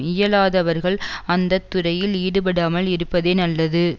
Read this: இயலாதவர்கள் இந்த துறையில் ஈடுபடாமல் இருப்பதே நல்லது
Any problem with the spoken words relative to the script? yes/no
yes